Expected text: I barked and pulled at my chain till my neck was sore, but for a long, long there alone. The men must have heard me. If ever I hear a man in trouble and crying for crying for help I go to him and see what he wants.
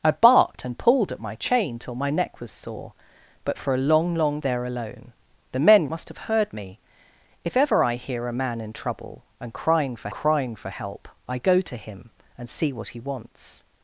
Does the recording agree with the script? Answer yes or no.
yes